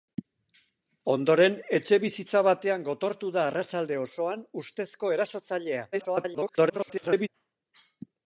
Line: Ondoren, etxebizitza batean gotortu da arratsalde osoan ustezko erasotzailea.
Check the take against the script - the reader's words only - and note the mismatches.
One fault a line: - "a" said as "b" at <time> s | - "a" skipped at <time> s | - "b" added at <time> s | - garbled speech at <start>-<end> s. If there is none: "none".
- garbled speech at 5.9-7.3 s